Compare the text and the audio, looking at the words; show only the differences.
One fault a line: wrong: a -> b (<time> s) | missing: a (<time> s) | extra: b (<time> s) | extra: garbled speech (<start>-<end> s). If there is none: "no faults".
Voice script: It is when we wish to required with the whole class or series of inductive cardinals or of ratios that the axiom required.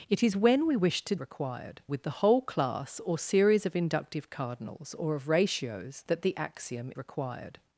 no faults